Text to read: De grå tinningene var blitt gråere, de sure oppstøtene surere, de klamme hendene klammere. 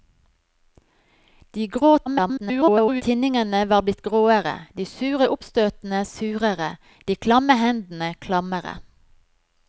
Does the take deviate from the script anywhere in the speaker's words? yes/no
yes